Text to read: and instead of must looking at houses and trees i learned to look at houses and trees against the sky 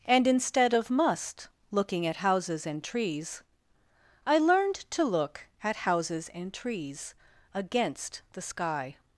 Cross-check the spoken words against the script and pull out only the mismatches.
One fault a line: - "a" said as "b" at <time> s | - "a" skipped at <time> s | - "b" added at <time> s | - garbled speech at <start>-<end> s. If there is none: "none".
none